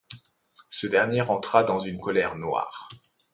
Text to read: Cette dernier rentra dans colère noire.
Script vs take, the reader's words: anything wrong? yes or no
yes